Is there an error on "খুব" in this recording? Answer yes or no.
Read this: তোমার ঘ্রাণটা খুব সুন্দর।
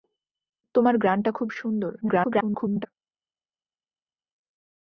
no